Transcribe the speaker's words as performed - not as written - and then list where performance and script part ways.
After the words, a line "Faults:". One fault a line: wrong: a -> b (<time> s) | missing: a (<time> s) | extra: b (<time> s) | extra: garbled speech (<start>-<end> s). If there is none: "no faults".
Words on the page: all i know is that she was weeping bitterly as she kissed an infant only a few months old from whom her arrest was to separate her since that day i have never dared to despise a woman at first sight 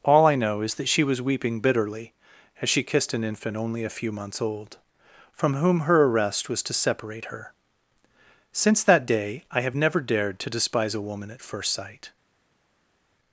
all i know is that she was weeping bitterly as she kissed an infant only a few months old from whom her arrest was to separate her since that day i have never dared to despise a woman at first sight
Faults:
no faults